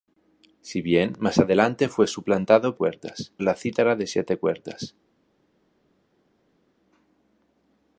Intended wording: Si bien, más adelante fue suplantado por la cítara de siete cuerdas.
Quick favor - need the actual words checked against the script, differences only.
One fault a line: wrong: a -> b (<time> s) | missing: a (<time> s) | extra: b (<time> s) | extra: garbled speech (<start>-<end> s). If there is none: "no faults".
wrong: por -> cuerdas (2.7 s)